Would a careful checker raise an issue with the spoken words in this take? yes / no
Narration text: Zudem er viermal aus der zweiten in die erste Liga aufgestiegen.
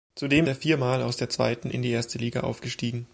no